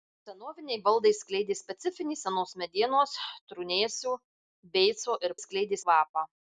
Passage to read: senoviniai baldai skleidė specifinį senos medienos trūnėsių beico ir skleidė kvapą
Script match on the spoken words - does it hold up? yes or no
yes